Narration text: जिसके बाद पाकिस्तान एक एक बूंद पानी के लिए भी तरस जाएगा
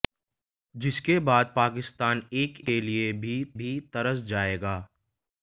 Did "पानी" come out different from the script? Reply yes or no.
yes